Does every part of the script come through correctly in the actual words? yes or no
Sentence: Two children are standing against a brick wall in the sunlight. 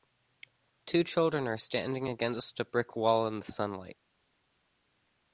yes